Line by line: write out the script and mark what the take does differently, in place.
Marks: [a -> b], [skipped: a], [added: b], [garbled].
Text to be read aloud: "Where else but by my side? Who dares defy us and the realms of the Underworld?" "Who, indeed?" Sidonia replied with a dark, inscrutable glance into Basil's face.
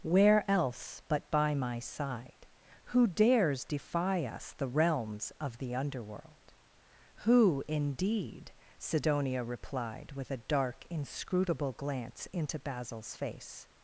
"Where else but by my side? Who dares defy us [skipped: and] the realms of the Underworld?" "Who, indeed?" Sidonia replied with a dark, inscrutable glance into Basil's face.